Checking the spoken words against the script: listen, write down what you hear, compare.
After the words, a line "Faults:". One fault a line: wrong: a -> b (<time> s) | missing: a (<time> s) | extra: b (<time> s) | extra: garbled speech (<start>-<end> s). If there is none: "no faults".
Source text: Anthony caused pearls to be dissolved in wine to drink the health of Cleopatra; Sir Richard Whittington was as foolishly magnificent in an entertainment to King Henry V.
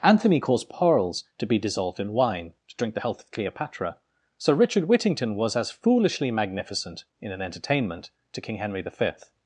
Anthony caused pearls to be dissolved in wine to drink the health of Cleopatra; Sir Richard Whittington was as foolishly magnificent in an entertainment to King Henry V.
Faults:
no faults